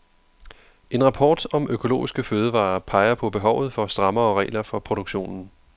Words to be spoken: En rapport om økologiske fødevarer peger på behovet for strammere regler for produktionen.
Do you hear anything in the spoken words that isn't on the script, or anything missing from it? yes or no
no